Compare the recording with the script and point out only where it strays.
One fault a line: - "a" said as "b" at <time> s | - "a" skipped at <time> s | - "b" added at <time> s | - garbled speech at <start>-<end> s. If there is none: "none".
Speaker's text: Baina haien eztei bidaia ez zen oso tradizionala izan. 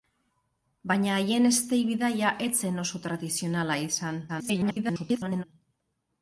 - garbled speech at 4.3-5.4 s